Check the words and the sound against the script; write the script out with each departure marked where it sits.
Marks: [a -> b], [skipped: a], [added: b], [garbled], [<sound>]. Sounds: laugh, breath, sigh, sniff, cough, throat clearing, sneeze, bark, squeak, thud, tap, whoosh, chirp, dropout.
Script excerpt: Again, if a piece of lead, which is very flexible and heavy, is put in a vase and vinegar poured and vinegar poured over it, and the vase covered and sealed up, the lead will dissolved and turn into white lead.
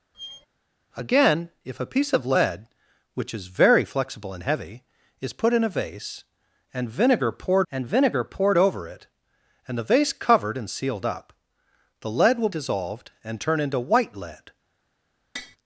[squeak] Again, if a piece of lead, which is very flexible and heavy, is put in a vase and vinegar poured and vinegar poured over it, and the vase covered and sealed up, the lead will dissolved and turn into white lead. [tap]